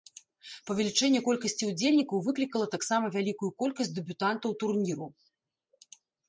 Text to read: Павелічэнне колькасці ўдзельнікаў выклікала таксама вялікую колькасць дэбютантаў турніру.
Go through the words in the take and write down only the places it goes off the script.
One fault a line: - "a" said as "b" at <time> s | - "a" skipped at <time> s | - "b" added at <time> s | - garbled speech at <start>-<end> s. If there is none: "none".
none